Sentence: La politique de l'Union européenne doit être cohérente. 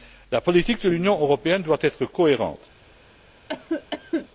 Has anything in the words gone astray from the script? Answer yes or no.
no